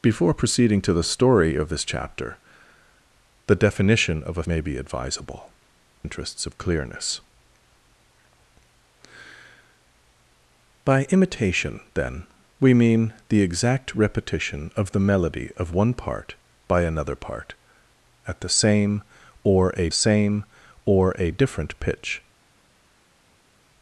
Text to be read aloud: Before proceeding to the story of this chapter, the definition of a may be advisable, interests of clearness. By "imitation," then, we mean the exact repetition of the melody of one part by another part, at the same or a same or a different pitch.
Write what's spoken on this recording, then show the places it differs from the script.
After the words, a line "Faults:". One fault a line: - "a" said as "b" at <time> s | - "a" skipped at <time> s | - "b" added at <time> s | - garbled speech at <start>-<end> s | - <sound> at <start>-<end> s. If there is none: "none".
Before proceeding to the story of this chapter, the definition of a may be advisable, interests of clearness. By "imitation," then, we mean the exact repetition of the melody of one part by another part, at the same or a same or a different pitch.
Faults:
none